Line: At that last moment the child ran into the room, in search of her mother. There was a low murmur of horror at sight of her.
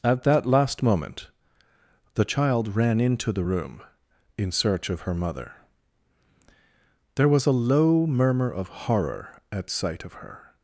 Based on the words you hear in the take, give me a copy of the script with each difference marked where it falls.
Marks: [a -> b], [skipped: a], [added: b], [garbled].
At that last moment the child ran into the room, in search of her mother. There was a low murmur of horror at sight of her.